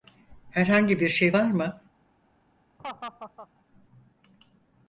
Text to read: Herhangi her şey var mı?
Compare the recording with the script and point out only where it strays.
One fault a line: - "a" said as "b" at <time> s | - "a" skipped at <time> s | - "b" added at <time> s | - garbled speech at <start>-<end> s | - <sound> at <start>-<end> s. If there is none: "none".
- "her" said as "bir" at 1.0 s
- laugh at 2.8-3.5 s